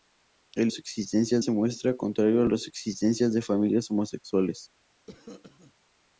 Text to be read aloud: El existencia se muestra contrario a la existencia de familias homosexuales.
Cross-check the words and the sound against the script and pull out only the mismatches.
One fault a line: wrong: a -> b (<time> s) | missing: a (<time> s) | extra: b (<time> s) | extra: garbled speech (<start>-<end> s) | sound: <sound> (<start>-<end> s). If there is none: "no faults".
sound: cough (5.1-5.7 s)